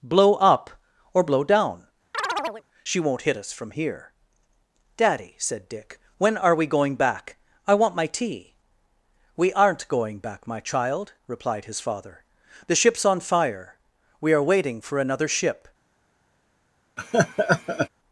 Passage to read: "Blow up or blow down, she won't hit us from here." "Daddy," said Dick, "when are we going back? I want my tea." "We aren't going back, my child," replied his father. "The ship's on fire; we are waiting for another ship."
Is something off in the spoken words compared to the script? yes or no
no